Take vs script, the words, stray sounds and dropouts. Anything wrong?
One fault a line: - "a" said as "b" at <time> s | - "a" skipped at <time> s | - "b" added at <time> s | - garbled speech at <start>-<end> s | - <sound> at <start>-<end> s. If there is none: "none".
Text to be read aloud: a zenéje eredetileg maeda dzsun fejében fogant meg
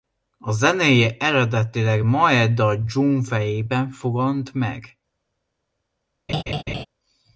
- laugh at 6.3-6.9 s